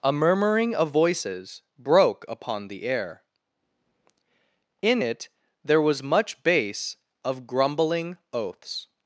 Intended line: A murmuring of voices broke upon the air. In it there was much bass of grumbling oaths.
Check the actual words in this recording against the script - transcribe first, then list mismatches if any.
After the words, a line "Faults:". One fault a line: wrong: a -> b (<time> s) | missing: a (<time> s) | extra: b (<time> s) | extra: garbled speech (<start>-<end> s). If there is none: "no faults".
A murmuring of voices broke upon the air. In it there was much bass of grumbling oaths.
Faults:
no faults